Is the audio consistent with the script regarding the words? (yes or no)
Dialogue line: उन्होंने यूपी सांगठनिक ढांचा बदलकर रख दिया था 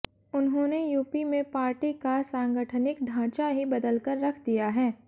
no